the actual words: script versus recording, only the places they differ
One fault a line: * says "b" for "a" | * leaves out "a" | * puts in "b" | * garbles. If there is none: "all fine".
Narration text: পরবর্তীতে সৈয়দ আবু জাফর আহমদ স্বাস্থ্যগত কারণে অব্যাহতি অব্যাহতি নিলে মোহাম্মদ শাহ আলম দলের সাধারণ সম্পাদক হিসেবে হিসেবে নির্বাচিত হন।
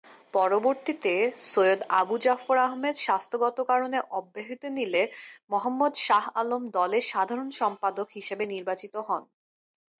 * leaves out "অব্যাহতি"
* leaves out "হিসেবে"